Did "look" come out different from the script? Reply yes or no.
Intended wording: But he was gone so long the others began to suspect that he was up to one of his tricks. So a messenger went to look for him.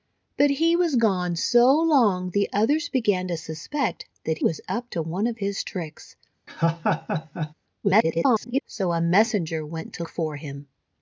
yes